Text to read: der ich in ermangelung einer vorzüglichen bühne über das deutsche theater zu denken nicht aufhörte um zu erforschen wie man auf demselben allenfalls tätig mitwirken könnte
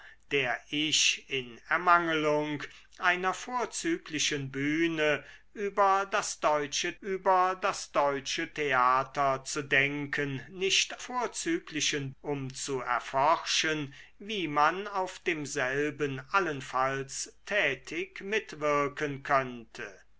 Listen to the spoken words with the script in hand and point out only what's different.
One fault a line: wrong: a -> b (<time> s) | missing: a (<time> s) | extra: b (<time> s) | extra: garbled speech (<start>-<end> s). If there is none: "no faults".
extra: über das deutsche (7.0 s)
wrong: aufhörte -> vorzüglichen (11.0 s)